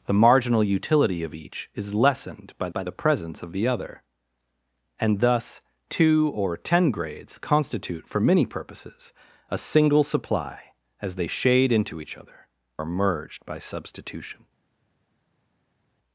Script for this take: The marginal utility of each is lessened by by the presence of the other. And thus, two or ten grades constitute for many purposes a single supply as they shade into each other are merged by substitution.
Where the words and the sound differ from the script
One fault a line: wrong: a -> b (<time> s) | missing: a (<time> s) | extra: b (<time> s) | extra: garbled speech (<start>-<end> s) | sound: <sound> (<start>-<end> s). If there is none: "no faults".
no faults